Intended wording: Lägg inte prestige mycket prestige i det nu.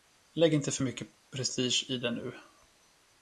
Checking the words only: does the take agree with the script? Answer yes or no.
no